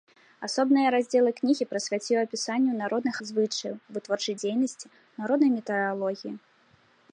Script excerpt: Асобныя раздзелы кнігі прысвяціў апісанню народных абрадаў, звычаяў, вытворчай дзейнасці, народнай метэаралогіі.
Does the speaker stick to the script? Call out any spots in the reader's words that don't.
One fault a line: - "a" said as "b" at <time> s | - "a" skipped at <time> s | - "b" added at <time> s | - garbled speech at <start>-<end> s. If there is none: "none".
- "абрадаў" skipped at 3.1 s